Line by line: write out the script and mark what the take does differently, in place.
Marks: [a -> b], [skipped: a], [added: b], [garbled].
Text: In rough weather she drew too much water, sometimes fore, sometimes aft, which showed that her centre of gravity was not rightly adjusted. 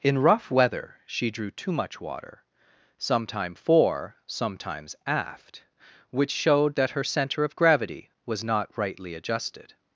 In rough weather she drew too much water, [sometimes -> sometime] fore, sometimes aft, which showed that her centre of gravity was not rightly adjusted.